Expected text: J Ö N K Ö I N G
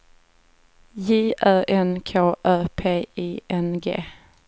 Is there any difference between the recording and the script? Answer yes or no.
yes